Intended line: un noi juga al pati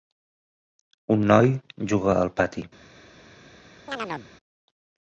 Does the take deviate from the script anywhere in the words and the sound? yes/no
yes